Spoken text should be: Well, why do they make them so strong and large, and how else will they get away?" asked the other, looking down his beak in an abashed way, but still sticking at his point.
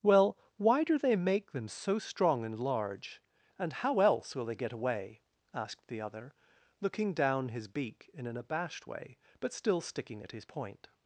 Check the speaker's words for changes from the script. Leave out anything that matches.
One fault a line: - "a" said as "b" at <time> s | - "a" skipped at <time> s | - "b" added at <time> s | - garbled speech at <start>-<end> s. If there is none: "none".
none